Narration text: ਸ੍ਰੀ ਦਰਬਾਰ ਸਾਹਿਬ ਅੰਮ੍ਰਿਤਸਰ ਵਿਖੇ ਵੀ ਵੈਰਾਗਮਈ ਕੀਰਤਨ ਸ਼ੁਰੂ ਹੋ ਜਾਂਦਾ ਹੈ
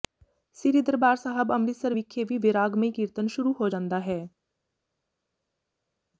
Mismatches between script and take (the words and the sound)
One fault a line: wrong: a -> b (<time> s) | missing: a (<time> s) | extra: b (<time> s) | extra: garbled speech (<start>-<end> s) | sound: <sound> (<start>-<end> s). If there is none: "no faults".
no faults